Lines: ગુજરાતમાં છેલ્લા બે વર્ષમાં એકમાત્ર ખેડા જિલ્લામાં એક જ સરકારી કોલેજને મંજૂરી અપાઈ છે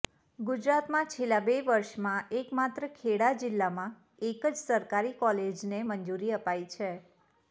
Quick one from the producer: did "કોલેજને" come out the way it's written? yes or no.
yes